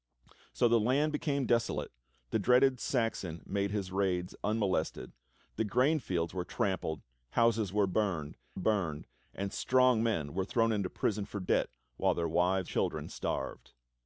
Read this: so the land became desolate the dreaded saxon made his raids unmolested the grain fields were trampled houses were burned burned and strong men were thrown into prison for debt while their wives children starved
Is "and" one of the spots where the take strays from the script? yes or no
no